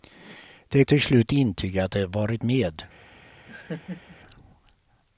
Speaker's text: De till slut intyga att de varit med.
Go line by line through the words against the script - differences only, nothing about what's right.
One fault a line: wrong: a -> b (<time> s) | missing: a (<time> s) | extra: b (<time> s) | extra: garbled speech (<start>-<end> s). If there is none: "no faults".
no faults